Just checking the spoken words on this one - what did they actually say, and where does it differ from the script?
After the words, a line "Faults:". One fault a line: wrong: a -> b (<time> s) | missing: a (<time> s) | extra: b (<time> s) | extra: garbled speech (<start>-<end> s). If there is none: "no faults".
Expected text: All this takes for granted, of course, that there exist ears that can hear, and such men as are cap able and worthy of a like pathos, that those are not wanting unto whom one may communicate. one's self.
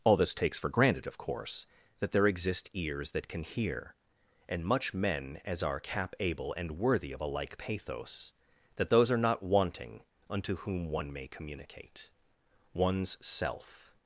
All this takes for granted, of course, that there exist ears that can hear, and much men as are cap able and worthy of a like pathos, that those are not wanting unto whom one may communicate. one's self.
Faults:
wrong: such -> much (4.7 s)